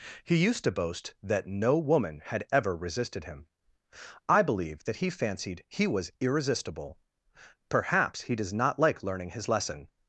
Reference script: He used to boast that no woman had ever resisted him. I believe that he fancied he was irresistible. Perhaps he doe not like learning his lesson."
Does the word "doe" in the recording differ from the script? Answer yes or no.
yes